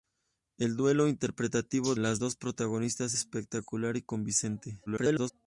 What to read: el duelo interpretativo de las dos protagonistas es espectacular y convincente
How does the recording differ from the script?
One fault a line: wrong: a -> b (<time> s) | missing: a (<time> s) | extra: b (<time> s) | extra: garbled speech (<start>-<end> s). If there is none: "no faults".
missing: de (1.9 s)
missing: es (3.1 s)
extra: garbled speech (4.9-5.3 s)